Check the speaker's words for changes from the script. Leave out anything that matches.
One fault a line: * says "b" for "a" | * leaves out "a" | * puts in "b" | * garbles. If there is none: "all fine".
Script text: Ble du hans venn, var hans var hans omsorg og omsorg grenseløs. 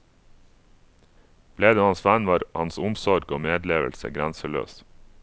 * leaves out "var hans"
* says "medlevelse" for "omsorg"